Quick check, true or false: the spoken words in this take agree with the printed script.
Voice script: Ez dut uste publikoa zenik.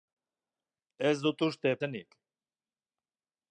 false